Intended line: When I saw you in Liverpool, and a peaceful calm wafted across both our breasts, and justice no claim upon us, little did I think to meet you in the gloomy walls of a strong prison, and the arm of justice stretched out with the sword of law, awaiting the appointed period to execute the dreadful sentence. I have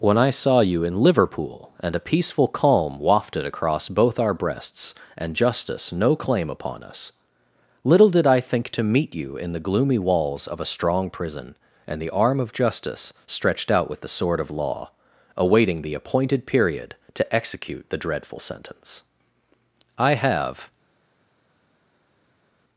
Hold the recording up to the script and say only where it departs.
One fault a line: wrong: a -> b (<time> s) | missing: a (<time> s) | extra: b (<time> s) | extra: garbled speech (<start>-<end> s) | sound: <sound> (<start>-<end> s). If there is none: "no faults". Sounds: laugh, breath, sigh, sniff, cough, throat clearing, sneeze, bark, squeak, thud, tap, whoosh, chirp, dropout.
no faults